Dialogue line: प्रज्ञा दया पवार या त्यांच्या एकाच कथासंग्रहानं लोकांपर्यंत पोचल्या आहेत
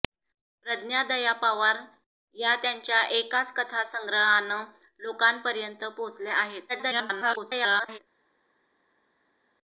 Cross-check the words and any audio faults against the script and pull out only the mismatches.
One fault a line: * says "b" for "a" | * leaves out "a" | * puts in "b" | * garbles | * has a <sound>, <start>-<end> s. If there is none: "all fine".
* garbles